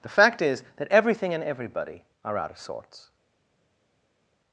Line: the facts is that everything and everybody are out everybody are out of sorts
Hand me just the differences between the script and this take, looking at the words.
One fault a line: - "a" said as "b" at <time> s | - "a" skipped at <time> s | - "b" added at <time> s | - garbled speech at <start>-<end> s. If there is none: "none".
- "facts" said as "fact" at 0.1 s
- "everybody are out" skipped at 2.5 s